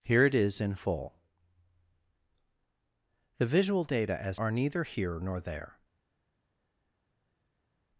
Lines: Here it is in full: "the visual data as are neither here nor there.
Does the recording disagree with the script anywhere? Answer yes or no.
no